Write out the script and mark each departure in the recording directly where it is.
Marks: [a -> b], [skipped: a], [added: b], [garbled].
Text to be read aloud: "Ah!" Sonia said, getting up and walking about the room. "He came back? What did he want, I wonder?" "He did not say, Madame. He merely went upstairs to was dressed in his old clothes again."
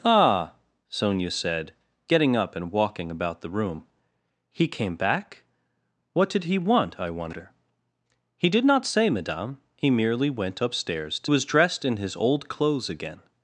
"Ah!" Sonia said, getting up and walking about the room. "He came back? What did he want, I wonder?" "He did not say, Madame. He merely went upstairs to was dressed in his old clothes again."